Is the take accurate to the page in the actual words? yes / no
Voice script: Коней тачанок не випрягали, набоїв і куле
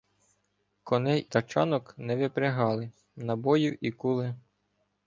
yes